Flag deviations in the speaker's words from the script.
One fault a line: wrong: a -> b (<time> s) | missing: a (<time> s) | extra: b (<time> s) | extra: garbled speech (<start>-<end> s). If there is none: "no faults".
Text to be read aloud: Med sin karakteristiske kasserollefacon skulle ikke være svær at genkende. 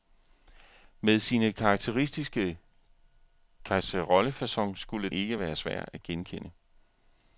no faults